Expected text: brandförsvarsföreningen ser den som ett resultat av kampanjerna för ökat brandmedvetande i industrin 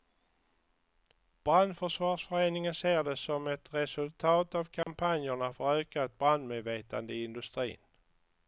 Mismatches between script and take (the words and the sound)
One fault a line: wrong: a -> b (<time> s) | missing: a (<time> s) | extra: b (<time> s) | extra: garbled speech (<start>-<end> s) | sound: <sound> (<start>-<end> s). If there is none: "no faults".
wrong: den -> det (3.0 s)
sound: dropout (4.8-4.9 s)